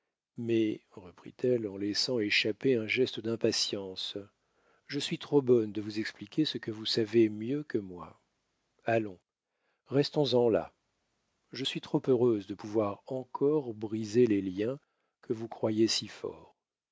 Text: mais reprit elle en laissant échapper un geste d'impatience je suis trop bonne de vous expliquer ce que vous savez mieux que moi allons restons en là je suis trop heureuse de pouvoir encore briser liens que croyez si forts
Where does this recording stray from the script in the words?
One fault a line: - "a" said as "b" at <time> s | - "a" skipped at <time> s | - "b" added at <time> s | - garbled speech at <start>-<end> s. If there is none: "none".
- "les" added at 14.3 s
- "vous" added at 15.3 s